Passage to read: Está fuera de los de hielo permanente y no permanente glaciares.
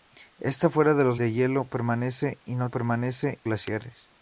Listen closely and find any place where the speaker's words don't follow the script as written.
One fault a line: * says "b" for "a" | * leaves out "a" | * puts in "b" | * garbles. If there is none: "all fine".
all fine